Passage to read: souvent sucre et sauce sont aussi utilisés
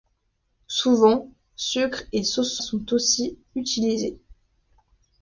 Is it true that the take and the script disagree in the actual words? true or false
false